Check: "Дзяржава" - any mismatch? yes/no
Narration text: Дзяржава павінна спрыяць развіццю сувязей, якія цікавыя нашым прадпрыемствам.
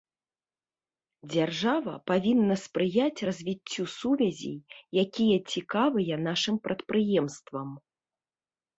no